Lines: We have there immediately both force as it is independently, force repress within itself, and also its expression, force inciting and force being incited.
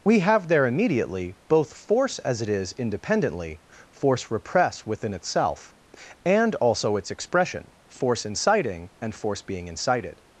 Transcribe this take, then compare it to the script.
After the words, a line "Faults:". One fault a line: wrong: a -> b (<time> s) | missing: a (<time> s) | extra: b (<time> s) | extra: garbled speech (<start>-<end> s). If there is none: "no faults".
We have there immediately both force as it is independently, force repress within itself, and also its expression, force inciting and force being incited.
Faults:
no faults